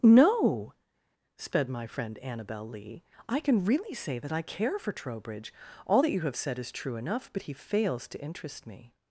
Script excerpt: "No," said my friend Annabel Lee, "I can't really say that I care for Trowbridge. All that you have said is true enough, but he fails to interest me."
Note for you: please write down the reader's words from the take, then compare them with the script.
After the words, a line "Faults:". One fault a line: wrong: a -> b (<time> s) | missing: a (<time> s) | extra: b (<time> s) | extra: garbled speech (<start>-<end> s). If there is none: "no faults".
"No," sped my friend Annabel Lee, "I can really say that I care for Trowbridge. All that you have said is true enough, but he fails to interest me."
Faults:
wrong: said -> sped (1.4 s)
wrong: can't -> can (3.4 s)